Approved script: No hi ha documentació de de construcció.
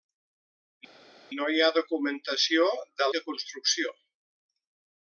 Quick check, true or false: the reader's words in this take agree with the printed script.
true